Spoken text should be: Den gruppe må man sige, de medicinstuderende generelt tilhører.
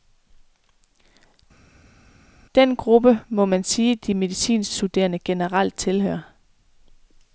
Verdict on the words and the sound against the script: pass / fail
pass